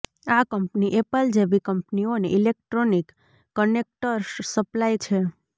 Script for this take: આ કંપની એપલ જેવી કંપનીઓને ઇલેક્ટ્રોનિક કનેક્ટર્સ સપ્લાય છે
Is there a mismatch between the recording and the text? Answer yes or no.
no